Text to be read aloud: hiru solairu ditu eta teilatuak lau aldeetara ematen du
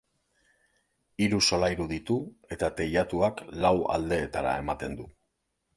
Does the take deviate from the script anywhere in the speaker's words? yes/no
no